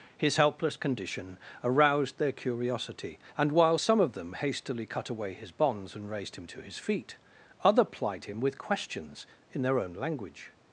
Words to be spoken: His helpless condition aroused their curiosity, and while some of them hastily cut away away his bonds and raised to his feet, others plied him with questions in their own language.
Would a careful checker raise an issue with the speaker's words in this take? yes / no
yes